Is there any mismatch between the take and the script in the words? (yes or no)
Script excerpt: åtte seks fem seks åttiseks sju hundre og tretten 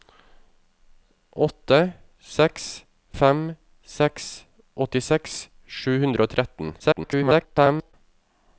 yes